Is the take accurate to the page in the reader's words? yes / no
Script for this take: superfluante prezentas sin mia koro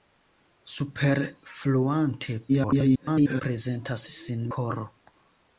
no